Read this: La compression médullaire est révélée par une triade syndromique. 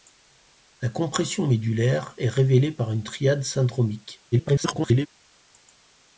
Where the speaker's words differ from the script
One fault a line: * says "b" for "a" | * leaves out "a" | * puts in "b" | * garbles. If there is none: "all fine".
* garbles